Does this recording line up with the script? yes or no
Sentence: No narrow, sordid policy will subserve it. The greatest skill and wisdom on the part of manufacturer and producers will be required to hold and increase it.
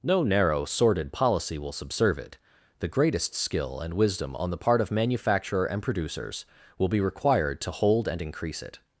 yes